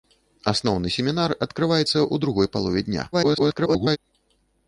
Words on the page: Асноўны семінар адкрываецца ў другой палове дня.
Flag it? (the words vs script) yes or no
yes